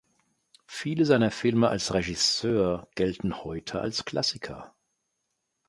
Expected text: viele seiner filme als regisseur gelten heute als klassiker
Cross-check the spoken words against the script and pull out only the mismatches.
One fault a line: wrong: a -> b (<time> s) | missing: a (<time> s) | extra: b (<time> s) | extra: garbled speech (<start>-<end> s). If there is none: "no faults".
no faults